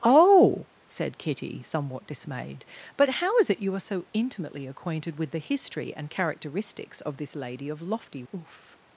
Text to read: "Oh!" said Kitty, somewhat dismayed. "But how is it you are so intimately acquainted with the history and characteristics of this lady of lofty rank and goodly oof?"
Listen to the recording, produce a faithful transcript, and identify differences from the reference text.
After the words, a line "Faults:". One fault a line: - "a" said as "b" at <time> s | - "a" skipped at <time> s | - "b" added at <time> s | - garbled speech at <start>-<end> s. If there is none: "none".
"Oh!" said Kitty, somewhat dismayed. "But how is it you are so intimately acquainted with the history and characteristics of this lady of lofty oof?"
Faults:
- "rank and goodly" skipped at 8.2 s